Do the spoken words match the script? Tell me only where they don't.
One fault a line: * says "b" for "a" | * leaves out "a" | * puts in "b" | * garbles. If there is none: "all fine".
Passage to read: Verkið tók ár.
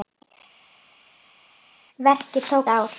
all fine